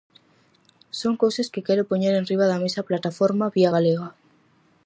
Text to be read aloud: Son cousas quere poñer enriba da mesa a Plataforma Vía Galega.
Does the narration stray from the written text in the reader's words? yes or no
yes